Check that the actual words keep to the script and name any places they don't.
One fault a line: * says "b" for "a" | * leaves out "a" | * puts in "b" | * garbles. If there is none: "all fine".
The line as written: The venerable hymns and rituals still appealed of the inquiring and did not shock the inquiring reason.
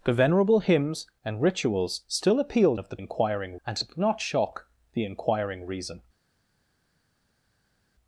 all fine